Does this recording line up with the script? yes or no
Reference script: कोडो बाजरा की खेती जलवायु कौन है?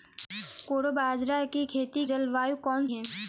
yes